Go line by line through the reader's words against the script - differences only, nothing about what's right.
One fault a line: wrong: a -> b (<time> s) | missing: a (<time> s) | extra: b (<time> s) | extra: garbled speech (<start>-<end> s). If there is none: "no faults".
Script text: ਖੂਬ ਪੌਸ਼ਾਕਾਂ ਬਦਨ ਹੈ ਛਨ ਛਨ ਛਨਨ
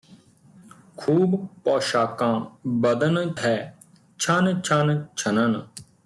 no faults